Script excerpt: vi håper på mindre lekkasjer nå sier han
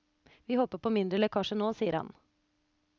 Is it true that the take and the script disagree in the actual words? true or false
false